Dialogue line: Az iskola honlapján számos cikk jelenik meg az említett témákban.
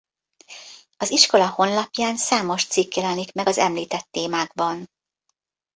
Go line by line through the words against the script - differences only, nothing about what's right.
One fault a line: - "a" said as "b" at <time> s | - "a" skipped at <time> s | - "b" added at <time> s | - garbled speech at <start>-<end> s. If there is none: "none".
none